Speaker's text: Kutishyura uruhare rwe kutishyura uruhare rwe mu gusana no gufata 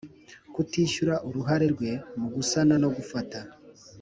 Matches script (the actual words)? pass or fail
fail